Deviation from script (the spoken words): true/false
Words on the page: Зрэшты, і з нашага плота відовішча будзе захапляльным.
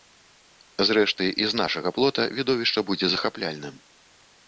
false